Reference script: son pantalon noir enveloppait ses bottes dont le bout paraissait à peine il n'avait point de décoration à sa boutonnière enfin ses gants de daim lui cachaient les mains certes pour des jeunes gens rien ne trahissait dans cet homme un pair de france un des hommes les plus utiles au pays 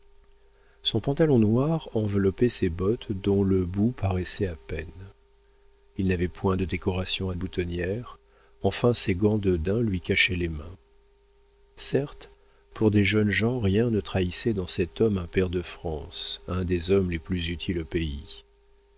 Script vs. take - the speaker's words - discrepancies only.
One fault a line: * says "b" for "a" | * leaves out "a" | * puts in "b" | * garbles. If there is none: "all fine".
* leaves out "sa"